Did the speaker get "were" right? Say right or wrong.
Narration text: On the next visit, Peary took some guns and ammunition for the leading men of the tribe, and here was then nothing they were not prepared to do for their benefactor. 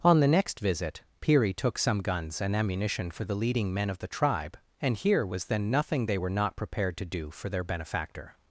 right